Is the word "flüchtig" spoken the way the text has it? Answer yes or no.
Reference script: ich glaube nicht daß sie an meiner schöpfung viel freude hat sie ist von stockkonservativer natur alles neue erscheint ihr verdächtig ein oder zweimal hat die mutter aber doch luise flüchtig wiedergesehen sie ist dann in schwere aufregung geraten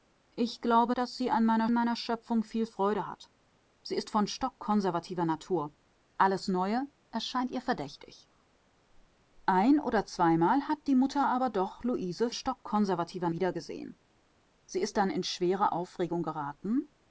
no